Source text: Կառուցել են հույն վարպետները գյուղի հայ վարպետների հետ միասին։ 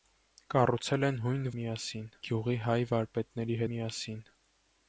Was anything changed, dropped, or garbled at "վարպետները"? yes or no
yes